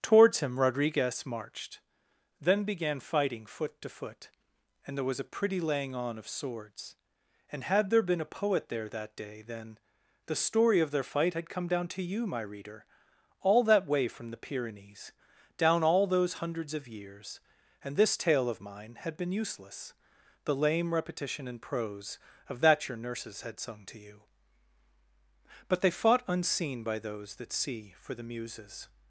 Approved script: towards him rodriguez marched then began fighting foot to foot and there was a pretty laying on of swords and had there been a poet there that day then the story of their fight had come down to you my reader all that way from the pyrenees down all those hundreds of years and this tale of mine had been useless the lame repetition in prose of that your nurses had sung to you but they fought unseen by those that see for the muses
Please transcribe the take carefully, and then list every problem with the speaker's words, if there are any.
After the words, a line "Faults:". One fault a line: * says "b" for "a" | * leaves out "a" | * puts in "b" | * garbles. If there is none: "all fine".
towards him rodriguez marched then began fighting foot to foot and there was a pretty laying on of swords and had there been a poet there that day then the story of their fight had come down to you my reader all that way from the pyrenees down all those hundreds of years and this tale of mine had been useless the lame repetition in prose of that your nurses had sung to you but they fought unseen by those that see for the muses
Faults:
all fine